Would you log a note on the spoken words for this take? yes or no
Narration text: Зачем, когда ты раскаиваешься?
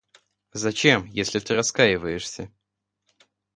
yes